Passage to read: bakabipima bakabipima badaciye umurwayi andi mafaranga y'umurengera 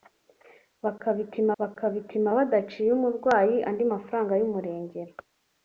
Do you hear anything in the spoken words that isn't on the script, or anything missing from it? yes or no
no